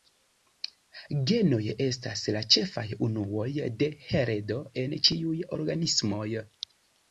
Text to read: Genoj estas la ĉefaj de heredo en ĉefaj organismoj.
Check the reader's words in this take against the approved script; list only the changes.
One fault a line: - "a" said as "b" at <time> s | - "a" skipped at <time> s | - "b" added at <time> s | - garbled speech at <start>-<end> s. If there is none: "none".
- "unuoj" added at 3.1 s
- "ĉefaj" said as "ĉiuj" at 5.1 s